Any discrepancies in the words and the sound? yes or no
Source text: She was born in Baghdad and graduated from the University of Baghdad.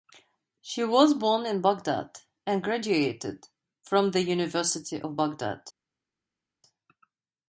no